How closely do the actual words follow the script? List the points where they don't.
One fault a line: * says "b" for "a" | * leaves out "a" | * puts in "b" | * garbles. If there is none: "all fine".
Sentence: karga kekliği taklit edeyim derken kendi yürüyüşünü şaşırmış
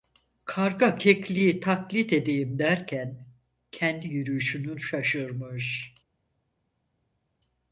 all fine